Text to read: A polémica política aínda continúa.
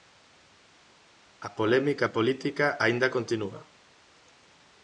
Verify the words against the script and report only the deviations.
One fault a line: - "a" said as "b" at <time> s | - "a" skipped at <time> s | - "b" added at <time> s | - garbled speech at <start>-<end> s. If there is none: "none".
none